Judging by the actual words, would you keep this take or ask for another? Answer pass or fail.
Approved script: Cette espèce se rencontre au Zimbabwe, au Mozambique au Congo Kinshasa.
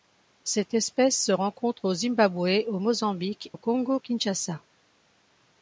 pass